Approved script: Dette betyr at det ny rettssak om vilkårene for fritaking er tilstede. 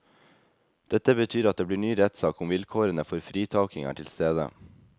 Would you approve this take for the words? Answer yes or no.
no